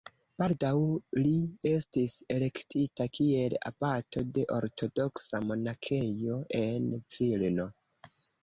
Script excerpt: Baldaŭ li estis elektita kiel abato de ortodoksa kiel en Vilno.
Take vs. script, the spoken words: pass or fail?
fail